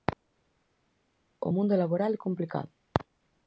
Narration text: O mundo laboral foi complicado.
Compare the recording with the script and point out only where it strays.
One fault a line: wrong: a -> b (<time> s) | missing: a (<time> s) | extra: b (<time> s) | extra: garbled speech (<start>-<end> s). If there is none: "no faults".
wrong: foi -> é (2.1 s)